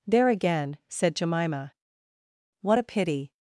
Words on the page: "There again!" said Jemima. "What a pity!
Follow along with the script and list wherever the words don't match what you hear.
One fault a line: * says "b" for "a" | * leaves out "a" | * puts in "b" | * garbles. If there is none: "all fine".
all fine